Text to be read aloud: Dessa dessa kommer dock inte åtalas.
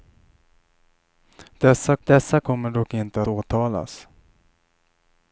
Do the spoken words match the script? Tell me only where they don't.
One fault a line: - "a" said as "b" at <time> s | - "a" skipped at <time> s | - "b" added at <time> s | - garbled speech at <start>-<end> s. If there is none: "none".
none